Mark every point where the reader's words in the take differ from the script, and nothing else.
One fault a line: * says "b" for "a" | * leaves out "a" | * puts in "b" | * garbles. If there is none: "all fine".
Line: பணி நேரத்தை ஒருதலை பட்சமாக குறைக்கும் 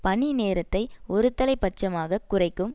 all fine